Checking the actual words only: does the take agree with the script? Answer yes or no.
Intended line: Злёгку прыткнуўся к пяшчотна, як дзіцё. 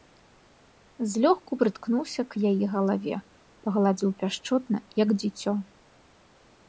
no